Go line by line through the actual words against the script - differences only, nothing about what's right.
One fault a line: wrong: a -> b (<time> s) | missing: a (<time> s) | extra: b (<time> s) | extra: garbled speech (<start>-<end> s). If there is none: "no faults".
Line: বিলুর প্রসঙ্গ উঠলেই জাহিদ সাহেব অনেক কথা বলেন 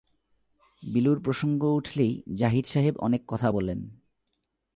no faults